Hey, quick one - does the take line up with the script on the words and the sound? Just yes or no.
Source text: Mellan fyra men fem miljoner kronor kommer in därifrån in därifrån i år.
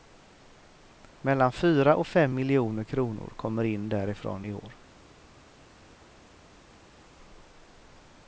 no